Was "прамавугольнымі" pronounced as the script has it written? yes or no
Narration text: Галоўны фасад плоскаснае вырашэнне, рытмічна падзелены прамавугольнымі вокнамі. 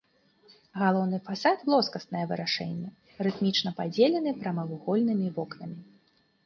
yes